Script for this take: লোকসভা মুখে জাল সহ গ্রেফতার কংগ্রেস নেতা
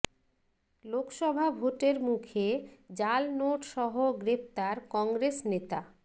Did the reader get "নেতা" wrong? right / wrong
right